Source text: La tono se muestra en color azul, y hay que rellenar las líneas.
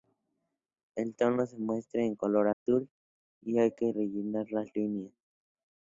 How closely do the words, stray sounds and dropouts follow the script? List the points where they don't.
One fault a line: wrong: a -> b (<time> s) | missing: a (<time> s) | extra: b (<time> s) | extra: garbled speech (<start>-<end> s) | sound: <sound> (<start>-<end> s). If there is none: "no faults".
wrong: La -> El (0.9 s)
sound: dropout (2.5-2.7 s)